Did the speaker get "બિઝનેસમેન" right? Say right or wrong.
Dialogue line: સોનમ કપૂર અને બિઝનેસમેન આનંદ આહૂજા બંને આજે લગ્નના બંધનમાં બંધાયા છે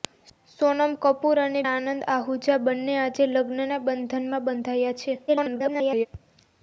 wrong